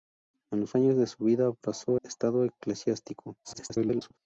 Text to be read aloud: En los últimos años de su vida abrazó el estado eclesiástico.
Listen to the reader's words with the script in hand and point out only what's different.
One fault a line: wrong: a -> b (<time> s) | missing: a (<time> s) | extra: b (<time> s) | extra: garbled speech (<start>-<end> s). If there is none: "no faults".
missing: últimos (0.8 s)
missing: el (2.0 s)
extra: garbled speech (3.4-4.2 s)